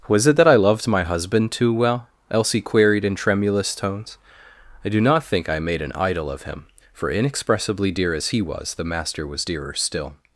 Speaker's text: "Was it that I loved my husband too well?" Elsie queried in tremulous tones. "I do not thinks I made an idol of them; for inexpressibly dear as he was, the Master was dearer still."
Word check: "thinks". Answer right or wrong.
wrong